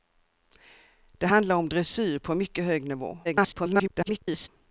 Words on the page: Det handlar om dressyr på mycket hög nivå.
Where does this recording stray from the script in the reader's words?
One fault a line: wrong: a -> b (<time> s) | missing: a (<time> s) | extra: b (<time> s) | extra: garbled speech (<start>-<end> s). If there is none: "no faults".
extra: garbled speech (3.2-4.5 s)